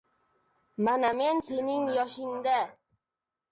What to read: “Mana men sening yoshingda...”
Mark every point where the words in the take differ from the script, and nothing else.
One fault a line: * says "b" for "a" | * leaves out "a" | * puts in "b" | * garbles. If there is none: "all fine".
all fine